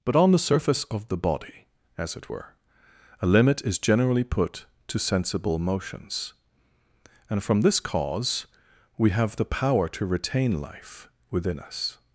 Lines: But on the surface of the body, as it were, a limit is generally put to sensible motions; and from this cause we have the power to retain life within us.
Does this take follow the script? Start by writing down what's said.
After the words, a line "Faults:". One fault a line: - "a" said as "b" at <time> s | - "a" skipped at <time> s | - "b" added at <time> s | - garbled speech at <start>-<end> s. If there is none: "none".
But on the surface of the body, as it were, a limit is generally put to sensible motions; and from this cause we have the power to retain life within us.
Faults:
none